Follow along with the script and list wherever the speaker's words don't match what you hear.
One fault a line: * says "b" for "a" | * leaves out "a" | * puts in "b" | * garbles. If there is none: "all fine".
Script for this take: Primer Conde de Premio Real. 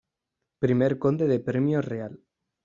all fine